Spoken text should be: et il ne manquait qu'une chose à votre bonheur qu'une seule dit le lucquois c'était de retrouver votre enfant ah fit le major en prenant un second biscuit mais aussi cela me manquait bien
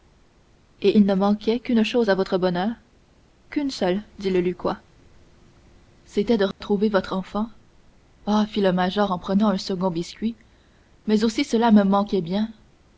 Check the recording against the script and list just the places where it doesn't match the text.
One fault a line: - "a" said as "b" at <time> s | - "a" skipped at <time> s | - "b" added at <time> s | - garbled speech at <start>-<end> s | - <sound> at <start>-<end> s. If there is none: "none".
- dropout at 6.5-6.6 s